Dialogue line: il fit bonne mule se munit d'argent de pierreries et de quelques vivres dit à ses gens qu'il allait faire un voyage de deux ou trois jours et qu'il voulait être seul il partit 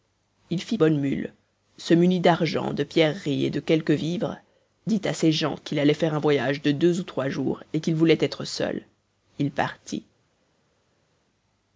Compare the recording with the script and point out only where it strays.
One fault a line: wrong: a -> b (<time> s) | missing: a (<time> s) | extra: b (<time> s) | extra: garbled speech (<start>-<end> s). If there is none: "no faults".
no faults